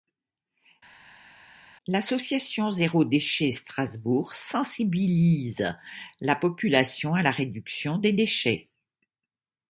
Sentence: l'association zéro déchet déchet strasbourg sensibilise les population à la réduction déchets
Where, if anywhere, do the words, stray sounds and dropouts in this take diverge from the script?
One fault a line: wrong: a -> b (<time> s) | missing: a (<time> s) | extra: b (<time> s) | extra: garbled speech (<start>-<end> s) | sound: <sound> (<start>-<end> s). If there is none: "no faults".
missing: déchet (3.5 s)
wrong: les -> la (6.2 s)
extra: des (8.0 s)